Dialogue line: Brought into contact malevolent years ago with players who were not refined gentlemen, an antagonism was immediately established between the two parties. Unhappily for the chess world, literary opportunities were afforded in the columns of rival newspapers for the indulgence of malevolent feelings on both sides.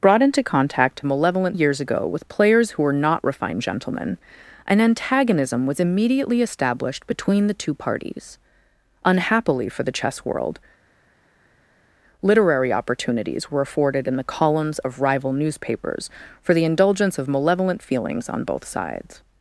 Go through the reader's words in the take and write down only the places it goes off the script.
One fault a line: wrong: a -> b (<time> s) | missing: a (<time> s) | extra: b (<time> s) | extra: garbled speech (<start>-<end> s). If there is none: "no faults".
no faults